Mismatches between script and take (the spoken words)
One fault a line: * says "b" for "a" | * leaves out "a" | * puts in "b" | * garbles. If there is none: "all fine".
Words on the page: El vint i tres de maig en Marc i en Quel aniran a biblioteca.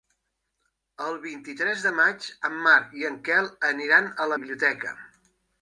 all fine